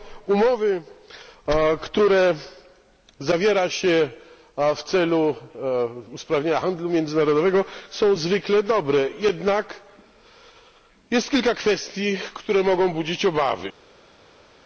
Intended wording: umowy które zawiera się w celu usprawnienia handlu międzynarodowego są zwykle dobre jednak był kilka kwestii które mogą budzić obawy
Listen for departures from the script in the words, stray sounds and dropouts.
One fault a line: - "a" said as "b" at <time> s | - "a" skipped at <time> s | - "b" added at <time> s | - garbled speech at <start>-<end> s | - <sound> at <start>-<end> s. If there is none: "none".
- "był" said as "jest" at 11.1 s